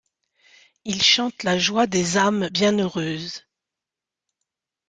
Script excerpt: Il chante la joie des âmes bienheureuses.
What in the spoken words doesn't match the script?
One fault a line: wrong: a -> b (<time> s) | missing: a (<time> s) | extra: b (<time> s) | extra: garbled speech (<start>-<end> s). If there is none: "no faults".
no faults